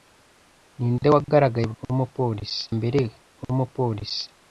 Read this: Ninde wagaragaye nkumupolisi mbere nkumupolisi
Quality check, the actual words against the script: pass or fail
pass